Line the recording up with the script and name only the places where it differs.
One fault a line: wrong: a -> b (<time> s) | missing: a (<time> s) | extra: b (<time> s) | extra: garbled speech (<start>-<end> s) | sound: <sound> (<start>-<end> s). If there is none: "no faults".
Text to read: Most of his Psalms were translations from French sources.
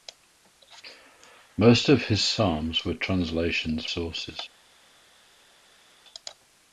missing: from French (3.9 s)